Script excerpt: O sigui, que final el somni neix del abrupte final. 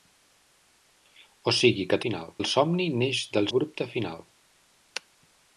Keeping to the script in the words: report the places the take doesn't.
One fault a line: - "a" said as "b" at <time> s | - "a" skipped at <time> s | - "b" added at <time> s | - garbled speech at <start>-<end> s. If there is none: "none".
none